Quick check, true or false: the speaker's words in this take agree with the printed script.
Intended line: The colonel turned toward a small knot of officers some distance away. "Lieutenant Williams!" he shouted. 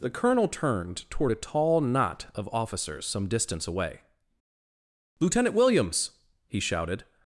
false